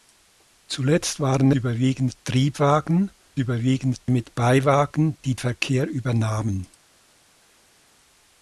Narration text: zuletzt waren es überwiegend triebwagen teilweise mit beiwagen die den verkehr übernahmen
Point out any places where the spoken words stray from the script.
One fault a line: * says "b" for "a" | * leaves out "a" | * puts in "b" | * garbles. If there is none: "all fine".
* leaves out "es"
* says "überwiegend" for "teilweise"
* leaves out "den"